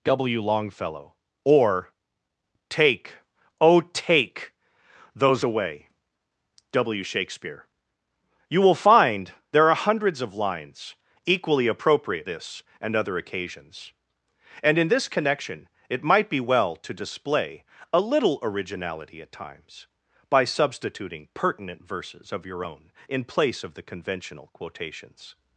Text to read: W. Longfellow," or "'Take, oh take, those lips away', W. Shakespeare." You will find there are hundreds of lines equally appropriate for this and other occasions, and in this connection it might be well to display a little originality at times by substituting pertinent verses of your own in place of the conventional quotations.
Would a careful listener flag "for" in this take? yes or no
yes